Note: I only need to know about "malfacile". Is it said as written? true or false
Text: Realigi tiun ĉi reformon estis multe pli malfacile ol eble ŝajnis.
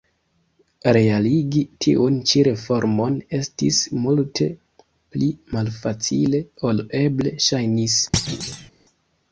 true